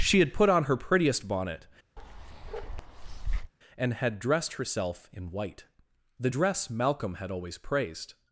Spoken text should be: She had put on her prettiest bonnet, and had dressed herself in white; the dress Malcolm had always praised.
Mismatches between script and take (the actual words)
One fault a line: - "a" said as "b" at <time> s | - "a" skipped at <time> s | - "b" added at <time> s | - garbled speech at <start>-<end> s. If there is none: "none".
none